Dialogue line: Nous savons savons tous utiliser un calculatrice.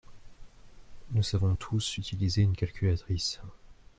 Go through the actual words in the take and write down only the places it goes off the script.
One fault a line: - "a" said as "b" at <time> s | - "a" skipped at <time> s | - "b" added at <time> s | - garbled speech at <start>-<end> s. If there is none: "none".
- "savons" skipped at 1.5 s
- "un" said as "une" at 2.4 s